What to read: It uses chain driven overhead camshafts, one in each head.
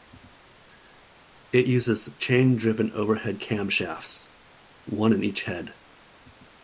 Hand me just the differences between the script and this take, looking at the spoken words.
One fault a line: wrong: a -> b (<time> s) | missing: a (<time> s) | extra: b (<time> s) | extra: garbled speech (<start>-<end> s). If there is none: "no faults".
no faults